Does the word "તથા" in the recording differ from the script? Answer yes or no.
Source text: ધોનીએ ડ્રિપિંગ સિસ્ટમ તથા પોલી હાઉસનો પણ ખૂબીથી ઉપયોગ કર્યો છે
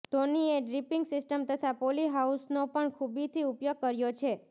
no